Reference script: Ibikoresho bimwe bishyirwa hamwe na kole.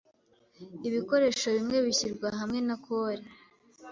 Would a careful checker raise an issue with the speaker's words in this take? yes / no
no